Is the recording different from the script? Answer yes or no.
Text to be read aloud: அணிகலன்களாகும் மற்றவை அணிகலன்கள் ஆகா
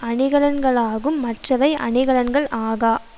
no